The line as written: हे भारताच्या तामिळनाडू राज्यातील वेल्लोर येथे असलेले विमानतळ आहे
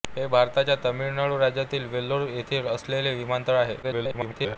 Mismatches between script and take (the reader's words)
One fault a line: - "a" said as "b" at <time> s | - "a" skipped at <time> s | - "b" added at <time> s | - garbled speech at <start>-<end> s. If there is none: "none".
- garbled speech at 3.8-4.6 s